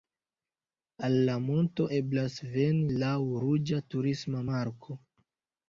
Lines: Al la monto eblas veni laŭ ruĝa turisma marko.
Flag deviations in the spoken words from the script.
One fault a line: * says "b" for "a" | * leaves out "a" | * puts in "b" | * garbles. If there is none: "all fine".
all fine